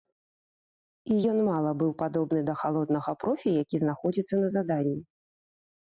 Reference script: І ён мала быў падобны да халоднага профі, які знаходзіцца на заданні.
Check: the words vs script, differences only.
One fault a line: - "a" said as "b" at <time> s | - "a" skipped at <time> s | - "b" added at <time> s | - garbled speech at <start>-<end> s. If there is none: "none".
none